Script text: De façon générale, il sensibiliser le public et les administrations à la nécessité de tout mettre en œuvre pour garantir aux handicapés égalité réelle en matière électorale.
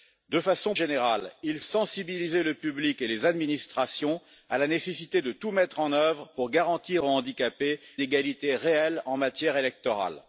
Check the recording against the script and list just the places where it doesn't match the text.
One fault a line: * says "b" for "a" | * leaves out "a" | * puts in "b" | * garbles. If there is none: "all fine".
all fine